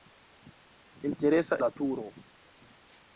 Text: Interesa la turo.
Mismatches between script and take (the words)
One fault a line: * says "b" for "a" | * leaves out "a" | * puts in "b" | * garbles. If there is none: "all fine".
all fine